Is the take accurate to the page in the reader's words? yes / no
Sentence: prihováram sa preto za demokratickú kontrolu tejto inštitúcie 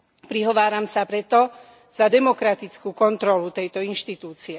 yes